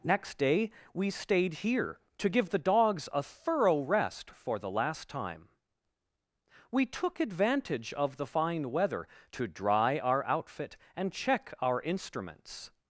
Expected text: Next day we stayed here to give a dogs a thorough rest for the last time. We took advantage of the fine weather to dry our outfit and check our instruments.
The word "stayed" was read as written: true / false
true